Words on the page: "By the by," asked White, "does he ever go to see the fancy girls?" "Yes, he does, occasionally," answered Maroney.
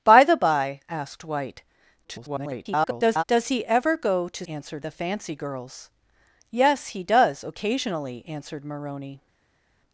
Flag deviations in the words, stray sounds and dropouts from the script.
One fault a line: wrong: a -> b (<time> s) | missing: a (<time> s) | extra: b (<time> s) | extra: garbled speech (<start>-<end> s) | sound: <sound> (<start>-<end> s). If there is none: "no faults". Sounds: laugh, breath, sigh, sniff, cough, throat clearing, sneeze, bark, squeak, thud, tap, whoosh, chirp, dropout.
extra: garbled speech (2.0-3.2 s)
wrong: see -> answered (4.5 s)